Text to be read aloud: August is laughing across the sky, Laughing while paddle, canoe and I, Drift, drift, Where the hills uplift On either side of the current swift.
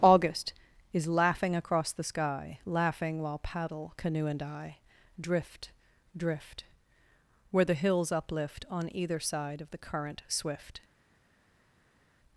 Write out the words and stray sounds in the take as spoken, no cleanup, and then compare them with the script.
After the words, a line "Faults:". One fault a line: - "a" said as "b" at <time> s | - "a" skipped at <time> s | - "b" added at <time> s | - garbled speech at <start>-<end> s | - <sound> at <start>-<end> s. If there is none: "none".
August is laughing across the sky, Laughing while paddle, canoe and I, Drift, drift, Where the hills uplift On either side of the current swift.
Faults:
none